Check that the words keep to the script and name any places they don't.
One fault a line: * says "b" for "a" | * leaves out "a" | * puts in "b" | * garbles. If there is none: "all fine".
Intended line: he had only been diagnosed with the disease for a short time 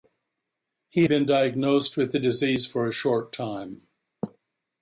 * leaves out "had only"